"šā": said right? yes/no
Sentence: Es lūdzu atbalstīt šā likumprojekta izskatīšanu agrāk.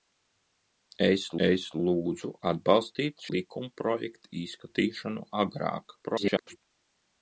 no